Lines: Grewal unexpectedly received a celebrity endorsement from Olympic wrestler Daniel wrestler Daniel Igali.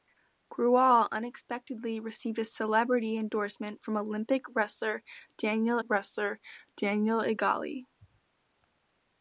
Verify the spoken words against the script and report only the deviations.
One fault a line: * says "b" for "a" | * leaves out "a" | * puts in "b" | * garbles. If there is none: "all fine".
all fine